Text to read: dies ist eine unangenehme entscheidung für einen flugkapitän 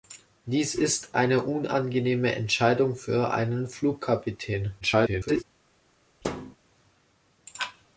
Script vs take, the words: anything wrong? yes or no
yes